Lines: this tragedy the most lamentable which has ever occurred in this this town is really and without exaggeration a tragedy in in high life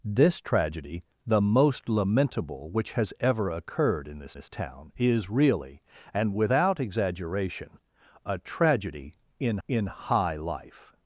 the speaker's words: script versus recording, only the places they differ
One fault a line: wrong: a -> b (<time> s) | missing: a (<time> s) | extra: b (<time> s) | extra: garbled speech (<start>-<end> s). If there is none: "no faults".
no faults